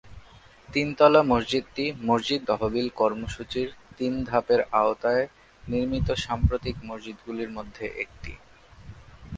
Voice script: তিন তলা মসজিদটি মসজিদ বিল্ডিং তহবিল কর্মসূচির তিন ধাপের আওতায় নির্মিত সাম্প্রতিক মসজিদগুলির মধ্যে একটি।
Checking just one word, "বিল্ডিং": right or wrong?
wrong